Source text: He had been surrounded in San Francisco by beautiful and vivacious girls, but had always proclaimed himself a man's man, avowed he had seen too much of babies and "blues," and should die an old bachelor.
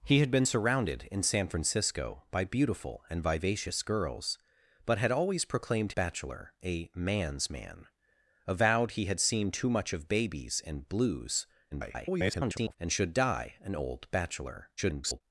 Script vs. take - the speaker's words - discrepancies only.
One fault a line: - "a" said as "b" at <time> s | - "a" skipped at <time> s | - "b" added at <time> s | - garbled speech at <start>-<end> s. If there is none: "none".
- "himself" said as "bachelor" at 5.9 s
- garbled speech at 11.7-12.8 s
- garbled speech at 14.8-15.2 s